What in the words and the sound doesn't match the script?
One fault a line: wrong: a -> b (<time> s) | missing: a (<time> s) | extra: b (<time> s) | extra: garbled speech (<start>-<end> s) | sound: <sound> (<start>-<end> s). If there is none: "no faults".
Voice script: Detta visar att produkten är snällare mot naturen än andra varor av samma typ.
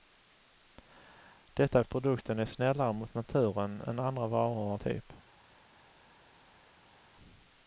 missing: visar (1.8 s)
missing: samma (4.8 s)